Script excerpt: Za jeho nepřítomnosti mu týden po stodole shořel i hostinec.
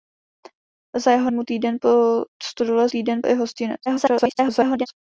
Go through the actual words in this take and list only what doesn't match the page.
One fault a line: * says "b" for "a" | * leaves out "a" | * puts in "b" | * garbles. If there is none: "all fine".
* leaves out "nepřítomnosti"
* says "týden" for "shořel"
* garbles